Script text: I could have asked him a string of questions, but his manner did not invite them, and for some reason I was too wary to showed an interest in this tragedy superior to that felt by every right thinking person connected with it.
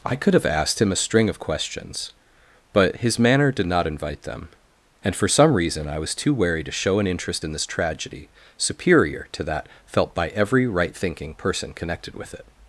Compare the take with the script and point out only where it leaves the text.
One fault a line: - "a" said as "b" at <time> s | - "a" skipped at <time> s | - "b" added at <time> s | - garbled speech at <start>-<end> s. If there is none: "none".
- "showed" said as "show" at 6.7 s